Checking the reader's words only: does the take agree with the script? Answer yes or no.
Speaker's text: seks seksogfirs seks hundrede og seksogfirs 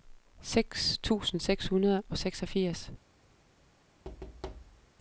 no